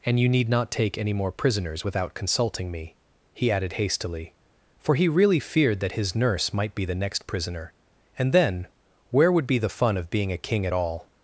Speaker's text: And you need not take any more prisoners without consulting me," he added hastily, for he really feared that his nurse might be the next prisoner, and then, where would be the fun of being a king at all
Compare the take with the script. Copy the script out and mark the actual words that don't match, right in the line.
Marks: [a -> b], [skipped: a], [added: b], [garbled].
And you need not take any more prisoners without consulting me," he added hastily, for he really feared that his nurse might be the next prisoner, and then, where would be the fun of being a king at all